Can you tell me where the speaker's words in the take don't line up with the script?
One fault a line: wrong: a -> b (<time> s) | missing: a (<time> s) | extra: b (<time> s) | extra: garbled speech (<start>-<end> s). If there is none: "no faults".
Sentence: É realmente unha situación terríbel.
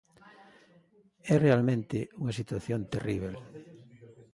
no faults